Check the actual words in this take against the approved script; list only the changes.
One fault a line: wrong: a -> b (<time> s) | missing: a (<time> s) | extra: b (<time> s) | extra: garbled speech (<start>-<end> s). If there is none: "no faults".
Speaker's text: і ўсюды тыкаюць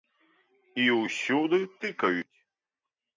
no faults